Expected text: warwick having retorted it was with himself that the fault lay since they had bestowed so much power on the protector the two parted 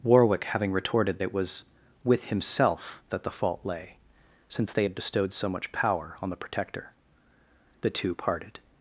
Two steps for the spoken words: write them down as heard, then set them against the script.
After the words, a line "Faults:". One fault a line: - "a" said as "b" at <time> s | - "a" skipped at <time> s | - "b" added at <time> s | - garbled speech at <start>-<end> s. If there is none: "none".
warwick having retorted it was with himself that the fault lay since they had bestowed so much power on the protector the two parted
Faults:
none